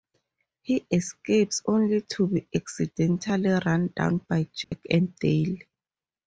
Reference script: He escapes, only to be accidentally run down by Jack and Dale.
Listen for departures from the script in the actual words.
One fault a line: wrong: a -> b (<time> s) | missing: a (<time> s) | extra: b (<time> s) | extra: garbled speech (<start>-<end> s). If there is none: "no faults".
no faults